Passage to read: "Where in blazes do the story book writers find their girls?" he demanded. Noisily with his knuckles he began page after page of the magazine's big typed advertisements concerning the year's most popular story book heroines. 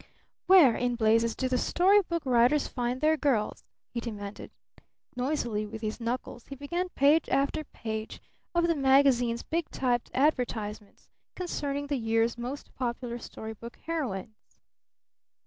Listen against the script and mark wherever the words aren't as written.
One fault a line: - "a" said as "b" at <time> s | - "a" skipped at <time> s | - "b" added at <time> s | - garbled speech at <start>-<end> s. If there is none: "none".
none